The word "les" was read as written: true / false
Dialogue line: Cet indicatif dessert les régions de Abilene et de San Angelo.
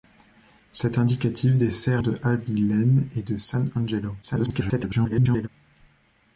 false